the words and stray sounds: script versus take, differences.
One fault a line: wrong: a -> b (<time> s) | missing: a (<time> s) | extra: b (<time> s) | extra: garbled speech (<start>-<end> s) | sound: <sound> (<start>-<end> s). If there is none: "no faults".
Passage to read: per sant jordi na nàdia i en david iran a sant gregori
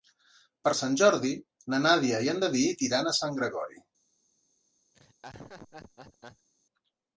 sound: laugh (4.9-6.5 s)